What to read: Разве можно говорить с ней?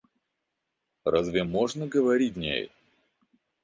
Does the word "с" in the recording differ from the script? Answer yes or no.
yes